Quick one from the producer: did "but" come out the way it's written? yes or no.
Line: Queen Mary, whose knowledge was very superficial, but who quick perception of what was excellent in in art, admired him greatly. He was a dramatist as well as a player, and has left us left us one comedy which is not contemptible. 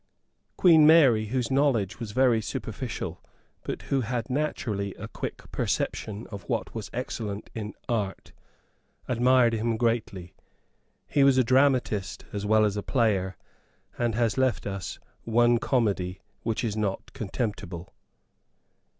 yes